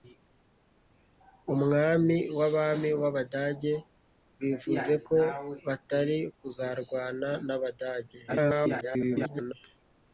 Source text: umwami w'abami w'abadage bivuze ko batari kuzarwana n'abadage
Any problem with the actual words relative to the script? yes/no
yes